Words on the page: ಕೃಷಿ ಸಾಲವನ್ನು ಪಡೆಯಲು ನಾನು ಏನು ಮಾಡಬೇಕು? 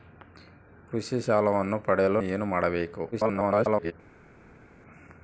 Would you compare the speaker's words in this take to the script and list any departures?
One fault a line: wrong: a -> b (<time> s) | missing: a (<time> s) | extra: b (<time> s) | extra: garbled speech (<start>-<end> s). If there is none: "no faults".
missing: ನಾನು (2.2 s)
extra: garbled speech (3.1-3.9 s)